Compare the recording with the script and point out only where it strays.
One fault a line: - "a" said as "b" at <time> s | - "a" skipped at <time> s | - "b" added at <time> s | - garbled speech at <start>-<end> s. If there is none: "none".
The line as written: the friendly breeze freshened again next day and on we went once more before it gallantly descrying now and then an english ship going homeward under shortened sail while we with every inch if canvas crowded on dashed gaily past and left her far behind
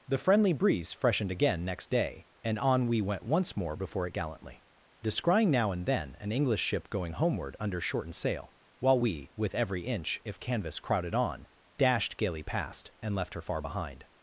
none